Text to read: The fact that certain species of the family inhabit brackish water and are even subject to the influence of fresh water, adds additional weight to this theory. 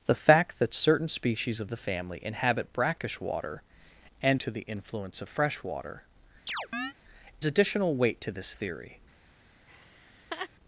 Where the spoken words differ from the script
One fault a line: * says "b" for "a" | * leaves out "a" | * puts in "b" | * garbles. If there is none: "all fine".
* leaves out "are even subject"
* leaves out "adds"